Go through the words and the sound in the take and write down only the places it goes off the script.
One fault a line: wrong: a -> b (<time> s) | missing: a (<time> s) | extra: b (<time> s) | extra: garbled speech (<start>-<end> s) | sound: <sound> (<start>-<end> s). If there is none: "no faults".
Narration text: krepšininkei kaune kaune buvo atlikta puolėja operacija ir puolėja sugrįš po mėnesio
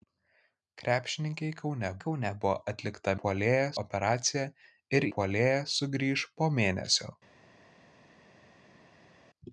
no faults